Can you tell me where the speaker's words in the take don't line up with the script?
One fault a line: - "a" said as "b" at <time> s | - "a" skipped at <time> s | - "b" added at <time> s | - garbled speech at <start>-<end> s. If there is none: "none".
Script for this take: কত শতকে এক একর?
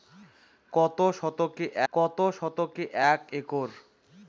- "কত শতকে" added at 1.9 s